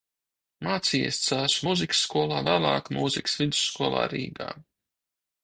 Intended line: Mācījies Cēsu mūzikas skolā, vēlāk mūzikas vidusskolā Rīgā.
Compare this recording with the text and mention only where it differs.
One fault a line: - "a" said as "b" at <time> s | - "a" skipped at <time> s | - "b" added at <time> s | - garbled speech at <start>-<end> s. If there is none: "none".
none